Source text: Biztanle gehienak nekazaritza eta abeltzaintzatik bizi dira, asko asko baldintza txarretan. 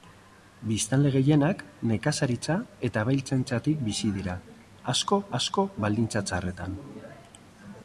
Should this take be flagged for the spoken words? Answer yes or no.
no